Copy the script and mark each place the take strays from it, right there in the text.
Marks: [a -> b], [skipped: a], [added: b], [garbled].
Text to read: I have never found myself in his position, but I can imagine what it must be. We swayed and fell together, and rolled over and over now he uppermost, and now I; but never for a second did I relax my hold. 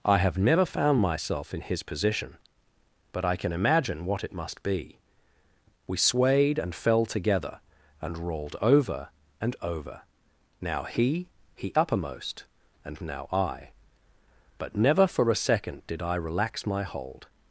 I have never found myself in his position, but I can imagine what it must be. We swayed and fell together, and rolled over and over now he [added: he] uppermost, and now I; but never for a second did I relax my hold.